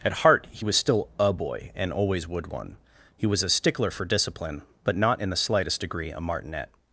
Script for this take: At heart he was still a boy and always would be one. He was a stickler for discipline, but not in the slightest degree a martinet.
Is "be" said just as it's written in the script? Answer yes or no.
no